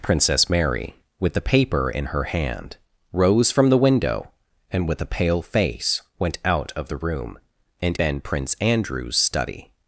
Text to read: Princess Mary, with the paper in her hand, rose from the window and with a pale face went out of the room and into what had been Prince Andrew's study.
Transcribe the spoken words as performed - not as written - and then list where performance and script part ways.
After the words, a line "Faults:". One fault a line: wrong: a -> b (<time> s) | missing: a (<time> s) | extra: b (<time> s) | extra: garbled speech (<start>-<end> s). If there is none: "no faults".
Princess Mary, with the paper in her hand, rose from the window and with a pale face went out of the room and been Prince Andrew's study.
Faults:
missing: into what had (8.0 s)